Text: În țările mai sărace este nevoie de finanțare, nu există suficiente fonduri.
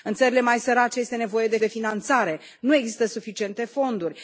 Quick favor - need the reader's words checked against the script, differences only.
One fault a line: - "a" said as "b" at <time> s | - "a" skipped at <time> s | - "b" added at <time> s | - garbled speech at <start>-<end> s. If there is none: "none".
- "de" added at 1.6 s